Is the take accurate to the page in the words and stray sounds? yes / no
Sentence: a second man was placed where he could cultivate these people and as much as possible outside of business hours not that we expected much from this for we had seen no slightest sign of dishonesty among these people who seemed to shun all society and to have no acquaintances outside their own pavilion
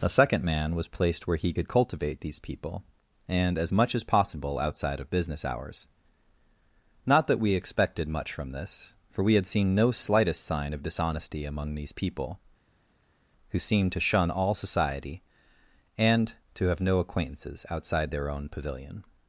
yes